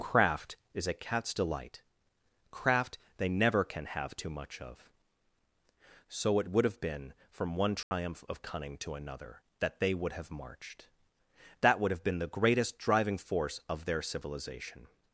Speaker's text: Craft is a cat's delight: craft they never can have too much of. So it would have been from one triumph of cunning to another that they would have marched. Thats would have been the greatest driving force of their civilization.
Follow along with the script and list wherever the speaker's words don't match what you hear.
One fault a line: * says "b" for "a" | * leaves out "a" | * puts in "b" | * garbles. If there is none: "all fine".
* says "That" for "Thats"